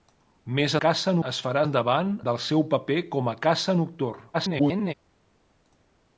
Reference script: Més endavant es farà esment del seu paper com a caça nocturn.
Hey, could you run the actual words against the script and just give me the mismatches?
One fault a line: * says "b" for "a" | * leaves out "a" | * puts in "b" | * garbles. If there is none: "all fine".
* says "caça" for "endavant"
* says "endavant" for "esment"
* garbles